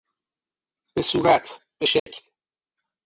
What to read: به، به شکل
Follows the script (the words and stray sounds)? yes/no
no